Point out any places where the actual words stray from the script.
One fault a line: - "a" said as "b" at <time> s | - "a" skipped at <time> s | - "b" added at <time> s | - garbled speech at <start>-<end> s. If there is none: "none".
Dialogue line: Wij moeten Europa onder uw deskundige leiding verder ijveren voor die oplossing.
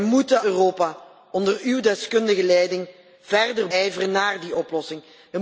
none